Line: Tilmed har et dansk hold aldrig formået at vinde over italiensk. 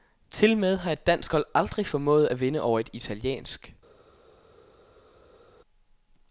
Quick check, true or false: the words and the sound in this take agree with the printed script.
false